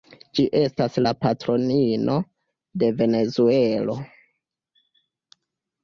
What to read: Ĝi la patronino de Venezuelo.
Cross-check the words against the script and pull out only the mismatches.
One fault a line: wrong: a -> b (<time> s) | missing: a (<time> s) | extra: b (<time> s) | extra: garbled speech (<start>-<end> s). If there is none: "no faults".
extra: estas (0.6 s)